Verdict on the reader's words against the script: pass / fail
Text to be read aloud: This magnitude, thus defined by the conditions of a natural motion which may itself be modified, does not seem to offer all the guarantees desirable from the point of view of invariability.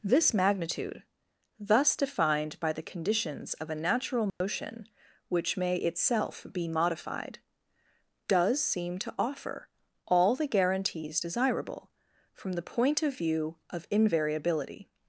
fail